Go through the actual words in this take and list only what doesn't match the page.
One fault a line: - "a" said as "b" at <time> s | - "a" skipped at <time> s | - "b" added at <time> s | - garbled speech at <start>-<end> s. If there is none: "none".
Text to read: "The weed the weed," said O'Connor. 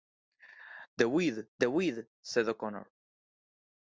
none